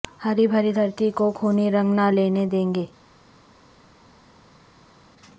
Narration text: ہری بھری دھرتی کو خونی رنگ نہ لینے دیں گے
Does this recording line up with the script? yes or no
yes